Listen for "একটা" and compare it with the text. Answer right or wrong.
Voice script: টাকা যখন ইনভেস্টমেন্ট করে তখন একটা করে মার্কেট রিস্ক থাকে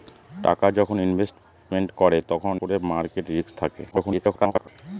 wrong